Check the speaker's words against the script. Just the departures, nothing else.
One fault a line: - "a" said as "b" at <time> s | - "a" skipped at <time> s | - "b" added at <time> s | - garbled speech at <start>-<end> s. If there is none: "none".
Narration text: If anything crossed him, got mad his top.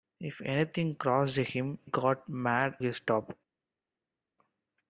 none